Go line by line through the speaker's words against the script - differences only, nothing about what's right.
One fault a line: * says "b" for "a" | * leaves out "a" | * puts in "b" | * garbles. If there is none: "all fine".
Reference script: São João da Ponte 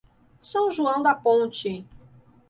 all fine